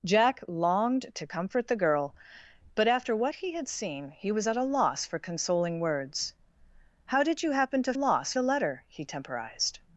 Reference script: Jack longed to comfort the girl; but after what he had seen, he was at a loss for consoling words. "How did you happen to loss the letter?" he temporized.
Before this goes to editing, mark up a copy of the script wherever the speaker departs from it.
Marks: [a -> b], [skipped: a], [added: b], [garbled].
Jack longed to comfort the girl; but after what he had seen, he was at a loss for consoling words. "How did you happen to loss the letter?" he temporized.